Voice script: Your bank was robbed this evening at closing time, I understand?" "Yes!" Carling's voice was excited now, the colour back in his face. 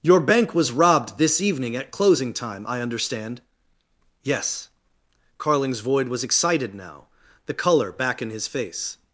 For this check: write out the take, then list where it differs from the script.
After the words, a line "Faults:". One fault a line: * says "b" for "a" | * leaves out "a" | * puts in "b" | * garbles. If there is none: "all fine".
Your bank was robbed this evening at closing time, I understand?" "Yes!" Carling's void was excited now, the colour back in his face.
Faults:
* says "void" for "voice"